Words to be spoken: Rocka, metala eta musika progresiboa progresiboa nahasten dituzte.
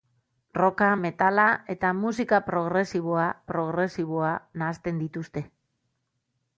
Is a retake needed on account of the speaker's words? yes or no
no